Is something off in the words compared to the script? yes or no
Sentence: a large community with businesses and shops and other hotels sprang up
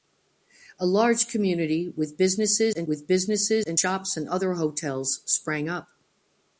yes